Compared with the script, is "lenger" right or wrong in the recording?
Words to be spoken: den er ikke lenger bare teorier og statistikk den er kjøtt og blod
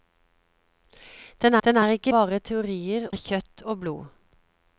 wrong